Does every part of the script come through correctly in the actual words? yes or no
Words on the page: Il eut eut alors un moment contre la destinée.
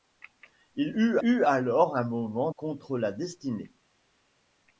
yes